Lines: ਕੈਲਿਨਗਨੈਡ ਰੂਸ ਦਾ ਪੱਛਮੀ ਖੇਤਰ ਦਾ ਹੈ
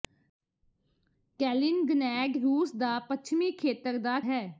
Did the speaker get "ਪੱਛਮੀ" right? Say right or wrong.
right